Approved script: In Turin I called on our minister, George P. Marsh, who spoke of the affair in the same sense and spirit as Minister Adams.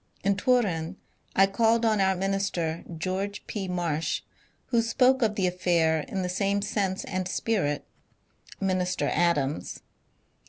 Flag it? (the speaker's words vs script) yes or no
yes